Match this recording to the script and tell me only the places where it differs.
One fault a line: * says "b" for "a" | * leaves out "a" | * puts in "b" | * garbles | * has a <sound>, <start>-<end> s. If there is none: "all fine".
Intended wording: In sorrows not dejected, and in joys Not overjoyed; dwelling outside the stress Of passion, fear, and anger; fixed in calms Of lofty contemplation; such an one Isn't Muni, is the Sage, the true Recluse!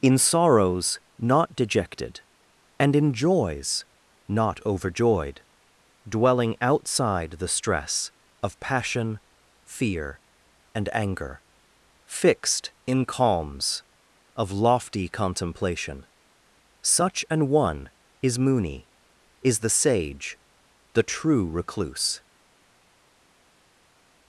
* says "Is" for "Isn't"